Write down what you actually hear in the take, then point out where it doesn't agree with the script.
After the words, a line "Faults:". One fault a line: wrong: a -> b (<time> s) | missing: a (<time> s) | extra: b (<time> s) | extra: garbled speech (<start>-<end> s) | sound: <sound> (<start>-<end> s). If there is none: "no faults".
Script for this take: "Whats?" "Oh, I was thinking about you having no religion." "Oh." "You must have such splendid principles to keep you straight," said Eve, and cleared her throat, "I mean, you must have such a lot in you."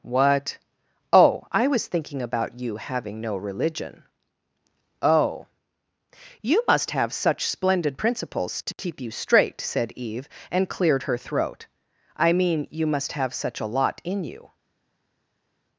"What?" "Oh, I was thinking about you having no religion." "Oh." "You must have such splendid principles to keep you straight," said Eve, and cleared her throat, "I mean, you must have such a lot in you."
Faults:
wrong: Whats -> What (0.0 s)